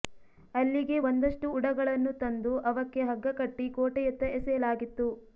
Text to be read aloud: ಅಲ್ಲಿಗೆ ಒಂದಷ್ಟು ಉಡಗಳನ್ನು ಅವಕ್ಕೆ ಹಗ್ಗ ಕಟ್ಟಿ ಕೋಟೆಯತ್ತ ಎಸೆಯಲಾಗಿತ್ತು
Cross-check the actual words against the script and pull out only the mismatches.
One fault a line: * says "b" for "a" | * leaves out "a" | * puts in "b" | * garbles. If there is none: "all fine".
* puts in "ತಂದು"